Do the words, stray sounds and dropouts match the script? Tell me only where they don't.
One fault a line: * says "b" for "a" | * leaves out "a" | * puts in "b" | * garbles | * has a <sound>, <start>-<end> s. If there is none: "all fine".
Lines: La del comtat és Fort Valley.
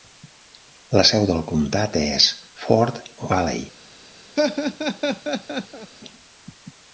* puts in "seu"
* has a laugh, 4.4-5.9 s